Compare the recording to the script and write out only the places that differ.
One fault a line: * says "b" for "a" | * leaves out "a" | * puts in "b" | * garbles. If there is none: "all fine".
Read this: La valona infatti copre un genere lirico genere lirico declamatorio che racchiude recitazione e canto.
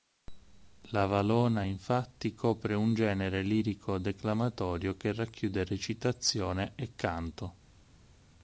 * leaves out "genere lirico"